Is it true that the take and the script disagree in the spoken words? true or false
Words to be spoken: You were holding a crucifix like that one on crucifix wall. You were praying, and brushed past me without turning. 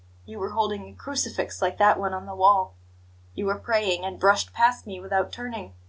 true